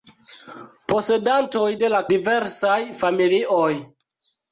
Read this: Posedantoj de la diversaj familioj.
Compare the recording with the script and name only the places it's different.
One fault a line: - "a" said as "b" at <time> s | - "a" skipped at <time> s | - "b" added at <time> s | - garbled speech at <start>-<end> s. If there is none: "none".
none